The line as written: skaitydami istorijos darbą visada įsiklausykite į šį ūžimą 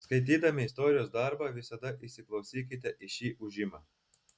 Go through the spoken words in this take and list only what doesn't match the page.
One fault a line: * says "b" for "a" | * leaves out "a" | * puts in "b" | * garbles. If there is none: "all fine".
all fine